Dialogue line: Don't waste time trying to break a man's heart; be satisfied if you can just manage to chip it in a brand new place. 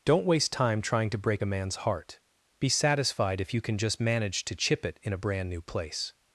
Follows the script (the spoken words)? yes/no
yes